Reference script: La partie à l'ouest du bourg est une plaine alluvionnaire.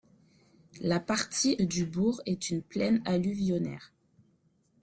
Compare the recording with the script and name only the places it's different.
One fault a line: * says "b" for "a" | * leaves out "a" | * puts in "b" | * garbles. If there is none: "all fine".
* leaves out "à l'ouest"